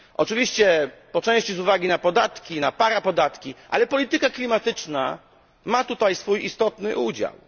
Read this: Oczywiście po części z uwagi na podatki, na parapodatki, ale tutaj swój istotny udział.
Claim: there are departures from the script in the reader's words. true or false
true